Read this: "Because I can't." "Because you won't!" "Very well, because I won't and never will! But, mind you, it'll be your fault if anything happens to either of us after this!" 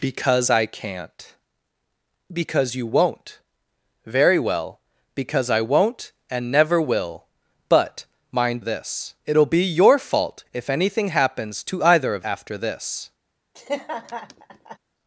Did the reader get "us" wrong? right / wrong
wrong